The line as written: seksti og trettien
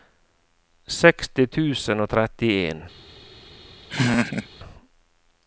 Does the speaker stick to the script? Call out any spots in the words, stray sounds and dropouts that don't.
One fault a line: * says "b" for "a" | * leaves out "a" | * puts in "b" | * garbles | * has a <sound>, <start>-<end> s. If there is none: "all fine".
* puts in "tusen"
* has a laugh, 3.9-4.5 s